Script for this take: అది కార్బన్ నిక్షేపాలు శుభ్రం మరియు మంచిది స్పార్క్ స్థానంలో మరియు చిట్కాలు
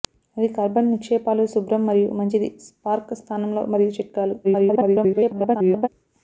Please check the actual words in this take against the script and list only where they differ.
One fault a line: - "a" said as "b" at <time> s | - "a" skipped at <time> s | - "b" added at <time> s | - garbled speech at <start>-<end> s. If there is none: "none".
- garbled speech at 4.4-5.9 s